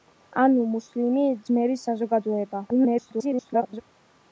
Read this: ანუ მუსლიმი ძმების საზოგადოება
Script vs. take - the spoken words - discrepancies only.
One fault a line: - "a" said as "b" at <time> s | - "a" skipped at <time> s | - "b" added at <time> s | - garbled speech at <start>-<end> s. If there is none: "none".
- garbled speech at 2.7-3.8 s